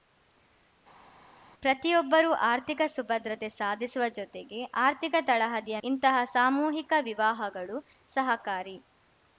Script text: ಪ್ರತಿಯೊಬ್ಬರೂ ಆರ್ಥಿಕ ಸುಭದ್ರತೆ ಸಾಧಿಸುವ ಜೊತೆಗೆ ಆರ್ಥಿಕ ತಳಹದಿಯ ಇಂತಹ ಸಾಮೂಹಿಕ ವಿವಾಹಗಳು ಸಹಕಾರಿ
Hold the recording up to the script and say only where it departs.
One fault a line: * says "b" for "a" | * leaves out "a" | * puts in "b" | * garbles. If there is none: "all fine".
all fine